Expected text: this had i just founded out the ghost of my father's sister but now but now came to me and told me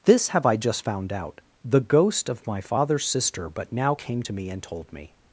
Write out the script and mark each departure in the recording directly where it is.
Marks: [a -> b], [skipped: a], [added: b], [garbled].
this [had -> have] i just [founded -> found] out the ghost of my father's sister but now [skipped: but now] came to me and told me